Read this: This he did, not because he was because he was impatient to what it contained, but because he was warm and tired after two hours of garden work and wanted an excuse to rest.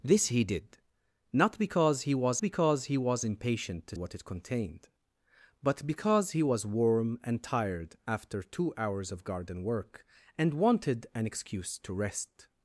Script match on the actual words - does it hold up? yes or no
yes